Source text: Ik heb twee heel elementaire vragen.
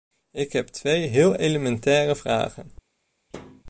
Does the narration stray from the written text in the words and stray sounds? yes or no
yes